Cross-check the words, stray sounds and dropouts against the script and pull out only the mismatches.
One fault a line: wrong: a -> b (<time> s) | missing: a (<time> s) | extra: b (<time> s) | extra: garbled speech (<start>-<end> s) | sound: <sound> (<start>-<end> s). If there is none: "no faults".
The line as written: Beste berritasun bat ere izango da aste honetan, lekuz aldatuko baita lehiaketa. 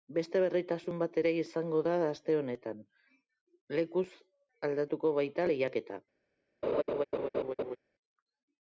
sound: laugh (6.6-7.8 s)